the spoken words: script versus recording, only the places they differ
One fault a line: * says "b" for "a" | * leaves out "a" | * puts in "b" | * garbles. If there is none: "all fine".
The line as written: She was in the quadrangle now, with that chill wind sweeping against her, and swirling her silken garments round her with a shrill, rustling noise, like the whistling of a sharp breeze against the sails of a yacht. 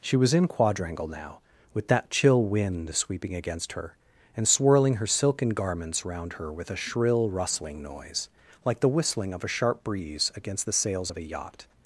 * leaves out "the"